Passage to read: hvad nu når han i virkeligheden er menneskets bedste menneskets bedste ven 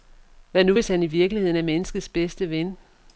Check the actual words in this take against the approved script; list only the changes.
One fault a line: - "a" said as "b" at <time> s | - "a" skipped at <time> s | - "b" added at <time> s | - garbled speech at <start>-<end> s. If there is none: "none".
- "når" said as "hvis" at 0.7 s
- "menneskets bedste" skipped at 2.5 s